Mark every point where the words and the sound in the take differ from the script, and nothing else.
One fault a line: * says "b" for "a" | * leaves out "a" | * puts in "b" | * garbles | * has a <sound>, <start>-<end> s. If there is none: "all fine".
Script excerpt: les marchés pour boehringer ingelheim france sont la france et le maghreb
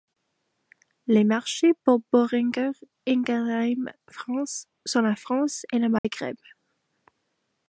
* has a dropout, 6.0-6.0 s